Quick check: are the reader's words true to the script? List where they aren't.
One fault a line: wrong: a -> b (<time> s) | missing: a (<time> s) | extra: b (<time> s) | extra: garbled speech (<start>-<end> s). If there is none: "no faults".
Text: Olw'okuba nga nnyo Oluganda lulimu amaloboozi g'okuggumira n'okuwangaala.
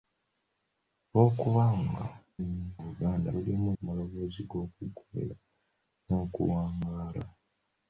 no faults